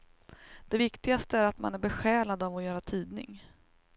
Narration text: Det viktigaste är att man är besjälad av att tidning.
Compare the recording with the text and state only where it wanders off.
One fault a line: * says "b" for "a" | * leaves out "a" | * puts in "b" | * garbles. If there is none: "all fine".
* puts in "göra"